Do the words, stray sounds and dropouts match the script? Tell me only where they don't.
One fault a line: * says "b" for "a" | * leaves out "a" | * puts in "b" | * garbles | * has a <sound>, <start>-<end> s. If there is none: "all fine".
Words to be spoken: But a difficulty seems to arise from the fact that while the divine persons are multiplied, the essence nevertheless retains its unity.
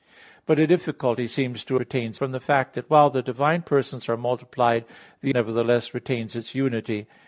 * says "retains" for "arise"
* leaves out "essence"